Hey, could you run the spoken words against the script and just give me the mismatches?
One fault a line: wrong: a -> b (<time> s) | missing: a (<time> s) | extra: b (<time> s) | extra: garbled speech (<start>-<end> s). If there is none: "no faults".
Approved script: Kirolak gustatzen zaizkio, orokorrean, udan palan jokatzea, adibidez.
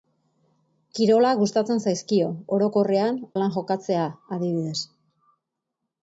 missing: udan (3.2 s)